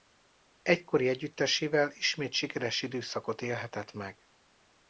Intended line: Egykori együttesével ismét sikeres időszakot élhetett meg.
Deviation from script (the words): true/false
false